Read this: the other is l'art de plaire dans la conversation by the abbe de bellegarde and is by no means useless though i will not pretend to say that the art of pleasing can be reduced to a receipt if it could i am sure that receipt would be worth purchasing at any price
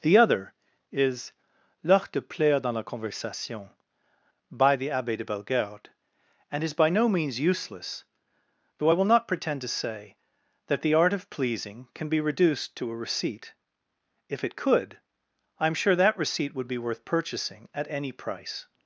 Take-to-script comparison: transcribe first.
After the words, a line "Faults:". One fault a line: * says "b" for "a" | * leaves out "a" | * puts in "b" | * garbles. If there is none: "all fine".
the other is l'art de plaire dans la conversation by the abbe de bellegarde and is by no means useless though i will not pretend to say that the art of pleasing can be reduced to a receipt if it could i am sure that receipt would be worth purchasing at any price
Faults:
all fine